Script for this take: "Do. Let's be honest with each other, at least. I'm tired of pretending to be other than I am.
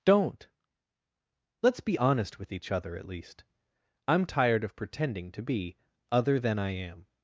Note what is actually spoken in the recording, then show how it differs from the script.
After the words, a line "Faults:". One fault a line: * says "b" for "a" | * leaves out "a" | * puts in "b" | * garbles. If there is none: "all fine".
"Don't. Let's be honest with each other, at least. I'm tired of pretending to be other than I am.
Faults:
* says "Don't" for "Do"